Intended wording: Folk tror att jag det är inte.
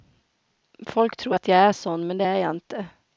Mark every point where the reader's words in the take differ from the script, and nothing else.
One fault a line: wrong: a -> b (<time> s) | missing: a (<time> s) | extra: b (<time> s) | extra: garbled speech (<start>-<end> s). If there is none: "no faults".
extra: är sån men (1.6 s)
extra: jag (2.3 s)